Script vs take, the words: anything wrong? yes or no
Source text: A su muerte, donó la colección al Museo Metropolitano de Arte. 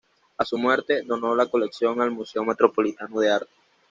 no